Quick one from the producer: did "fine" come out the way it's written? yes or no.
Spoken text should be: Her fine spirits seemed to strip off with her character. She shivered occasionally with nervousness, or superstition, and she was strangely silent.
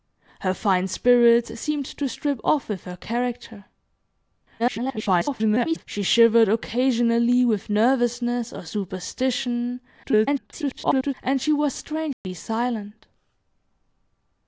yes